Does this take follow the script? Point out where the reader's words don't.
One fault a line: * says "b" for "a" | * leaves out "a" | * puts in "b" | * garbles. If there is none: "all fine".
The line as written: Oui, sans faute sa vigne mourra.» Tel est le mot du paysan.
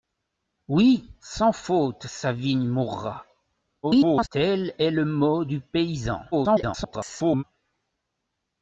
* garbles
* garbles